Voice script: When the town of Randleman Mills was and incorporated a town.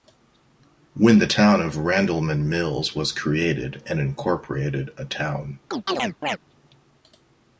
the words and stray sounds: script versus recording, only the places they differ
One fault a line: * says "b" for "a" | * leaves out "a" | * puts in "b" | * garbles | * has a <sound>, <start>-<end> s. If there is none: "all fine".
* puts in "created"
* has a chirp, 5.7-6.4 s